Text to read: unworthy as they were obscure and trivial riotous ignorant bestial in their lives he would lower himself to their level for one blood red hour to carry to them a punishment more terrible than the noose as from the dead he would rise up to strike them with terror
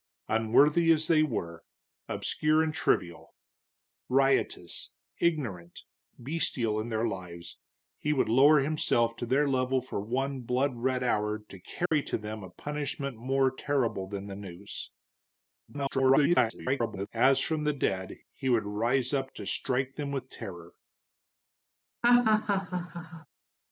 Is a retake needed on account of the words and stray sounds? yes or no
yes